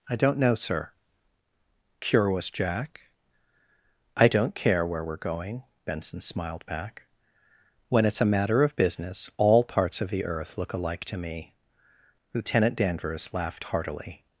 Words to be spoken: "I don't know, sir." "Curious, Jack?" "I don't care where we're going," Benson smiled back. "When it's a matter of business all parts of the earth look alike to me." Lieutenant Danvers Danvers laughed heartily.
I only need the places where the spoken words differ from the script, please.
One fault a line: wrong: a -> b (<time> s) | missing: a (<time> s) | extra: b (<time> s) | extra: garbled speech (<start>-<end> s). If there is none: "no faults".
missing: Danvers (13.3 s)